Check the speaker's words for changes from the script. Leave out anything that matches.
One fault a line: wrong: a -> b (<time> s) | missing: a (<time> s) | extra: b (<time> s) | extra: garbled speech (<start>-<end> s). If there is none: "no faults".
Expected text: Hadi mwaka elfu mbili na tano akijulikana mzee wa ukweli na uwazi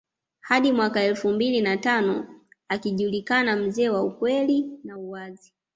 no faults